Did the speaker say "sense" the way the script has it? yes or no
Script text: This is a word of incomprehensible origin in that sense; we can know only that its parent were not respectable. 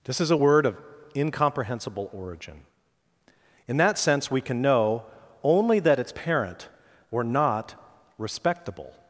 yes